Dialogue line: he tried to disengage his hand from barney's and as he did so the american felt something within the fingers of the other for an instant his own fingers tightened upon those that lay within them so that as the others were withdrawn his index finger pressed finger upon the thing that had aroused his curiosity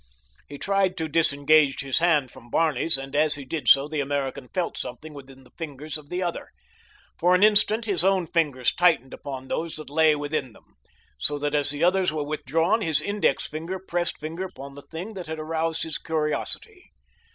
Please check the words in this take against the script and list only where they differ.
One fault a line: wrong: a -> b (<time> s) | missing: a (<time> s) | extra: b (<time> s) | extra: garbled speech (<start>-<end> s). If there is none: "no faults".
no faults